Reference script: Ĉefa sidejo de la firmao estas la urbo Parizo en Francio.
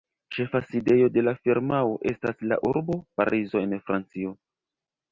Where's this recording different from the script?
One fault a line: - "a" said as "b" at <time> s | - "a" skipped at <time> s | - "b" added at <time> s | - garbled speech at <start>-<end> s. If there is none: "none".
none